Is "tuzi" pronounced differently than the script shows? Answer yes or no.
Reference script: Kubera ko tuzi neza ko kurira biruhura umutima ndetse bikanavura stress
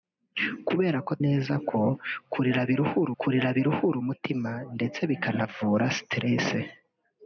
yes